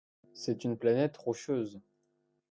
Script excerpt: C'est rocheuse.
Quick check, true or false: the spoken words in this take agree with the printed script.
false